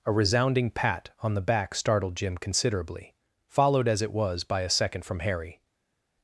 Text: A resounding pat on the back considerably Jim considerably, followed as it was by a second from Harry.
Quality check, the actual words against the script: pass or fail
fail